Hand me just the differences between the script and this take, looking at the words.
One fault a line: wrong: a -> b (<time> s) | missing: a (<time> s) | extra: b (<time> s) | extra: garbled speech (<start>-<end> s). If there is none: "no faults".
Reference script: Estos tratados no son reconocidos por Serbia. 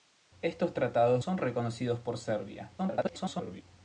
missing: no (1.2 s)
extra: garbled speech (2.8-3.6 s)